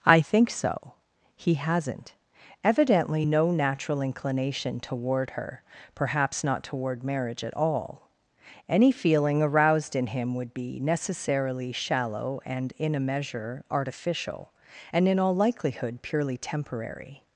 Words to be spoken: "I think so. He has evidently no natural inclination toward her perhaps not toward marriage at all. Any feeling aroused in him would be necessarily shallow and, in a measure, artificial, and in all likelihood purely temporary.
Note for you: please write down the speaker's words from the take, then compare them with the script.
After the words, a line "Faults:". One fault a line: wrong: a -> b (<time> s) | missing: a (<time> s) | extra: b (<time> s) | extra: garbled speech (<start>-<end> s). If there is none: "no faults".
"I think so. He hasn't evidently no natural inclination toward her perhaps not toward marriage at all. Any feeling aroused in him would be necessarily shallow and, in a measure, artificial, and in all likelihood purely temporary.
Faults:
wrong: has -> hasn't (1.6 s)